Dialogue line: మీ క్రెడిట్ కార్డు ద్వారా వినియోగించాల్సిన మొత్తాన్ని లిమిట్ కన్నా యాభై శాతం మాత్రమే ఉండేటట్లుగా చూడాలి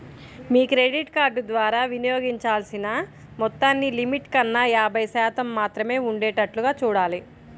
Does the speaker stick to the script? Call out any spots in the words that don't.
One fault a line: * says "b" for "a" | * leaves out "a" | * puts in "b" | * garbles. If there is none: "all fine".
all fine